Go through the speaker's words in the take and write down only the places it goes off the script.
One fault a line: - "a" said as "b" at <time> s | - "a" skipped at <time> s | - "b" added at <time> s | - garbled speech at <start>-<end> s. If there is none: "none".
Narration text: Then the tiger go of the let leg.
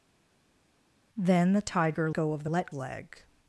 none